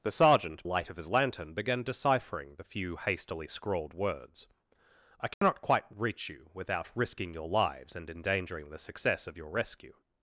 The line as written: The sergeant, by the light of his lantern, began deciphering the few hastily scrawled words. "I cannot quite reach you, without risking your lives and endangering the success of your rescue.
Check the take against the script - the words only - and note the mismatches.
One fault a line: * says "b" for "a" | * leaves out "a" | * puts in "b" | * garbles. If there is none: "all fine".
* leaves out "by the"